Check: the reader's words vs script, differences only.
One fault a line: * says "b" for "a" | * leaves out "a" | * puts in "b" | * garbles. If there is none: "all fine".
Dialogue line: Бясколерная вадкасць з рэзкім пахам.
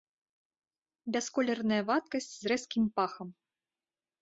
all fine